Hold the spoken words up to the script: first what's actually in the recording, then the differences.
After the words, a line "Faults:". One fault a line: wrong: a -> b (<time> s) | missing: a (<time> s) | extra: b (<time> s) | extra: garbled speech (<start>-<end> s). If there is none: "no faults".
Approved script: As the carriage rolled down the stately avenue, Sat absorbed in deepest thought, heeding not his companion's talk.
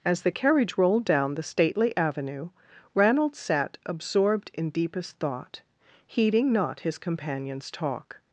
As the carriage rolled down the stately avenue, Ranald sat absorbed in deepest thought, heeding not his companion's talk.
Faults:
extra: Ranald (3.0 s)